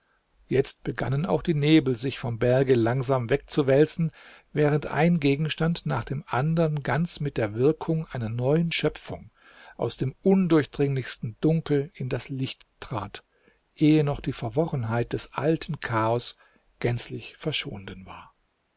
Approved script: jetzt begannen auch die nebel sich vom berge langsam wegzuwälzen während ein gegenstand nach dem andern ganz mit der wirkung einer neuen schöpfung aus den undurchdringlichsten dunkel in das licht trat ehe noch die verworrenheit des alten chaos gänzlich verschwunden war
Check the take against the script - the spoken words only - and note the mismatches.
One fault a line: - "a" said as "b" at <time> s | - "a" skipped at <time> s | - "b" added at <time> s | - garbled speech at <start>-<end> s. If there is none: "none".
- "den" said as "dem" at 10.0 s